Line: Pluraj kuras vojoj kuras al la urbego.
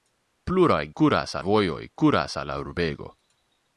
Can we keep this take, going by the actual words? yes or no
yes